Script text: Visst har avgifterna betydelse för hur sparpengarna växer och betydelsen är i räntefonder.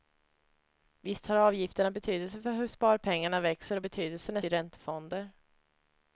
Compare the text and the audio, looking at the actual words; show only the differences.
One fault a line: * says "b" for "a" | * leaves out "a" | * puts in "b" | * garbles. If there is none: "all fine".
all fine